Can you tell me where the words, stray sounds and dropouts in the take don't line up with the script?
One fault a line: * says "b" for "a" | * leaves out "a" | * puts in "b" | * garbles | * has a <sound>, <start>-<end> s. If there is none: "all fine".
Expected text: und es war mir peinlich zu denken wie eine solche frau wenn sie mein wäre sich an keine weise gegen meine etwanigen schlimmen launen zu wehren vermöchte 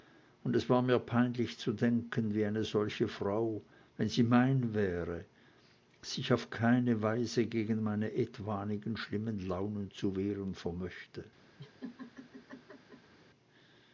* says "auf" for "an"
* has a laugh, 11.6-13.1 s